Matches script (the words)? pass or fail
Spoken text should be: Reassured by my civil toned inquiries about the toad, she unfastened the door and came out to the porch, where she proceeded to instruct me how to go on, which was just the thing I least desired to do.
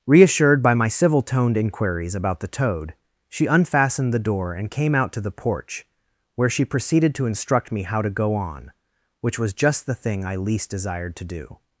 pass